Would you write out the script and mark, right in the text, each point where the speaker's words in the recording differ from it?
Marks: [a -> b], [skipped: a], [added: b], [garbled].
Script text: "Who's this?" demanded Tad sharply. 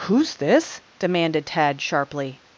"Who's this?" demanded Tad sharply.